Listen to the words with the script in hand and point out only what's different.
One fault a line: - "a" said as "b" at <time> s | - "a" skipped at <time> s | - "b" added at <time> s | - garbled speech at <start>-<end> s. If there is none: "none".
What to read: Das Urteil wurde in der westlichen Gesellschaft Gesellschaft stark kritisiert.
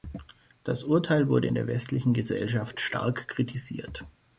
- "Gesellschaft" skipped at 2.8 s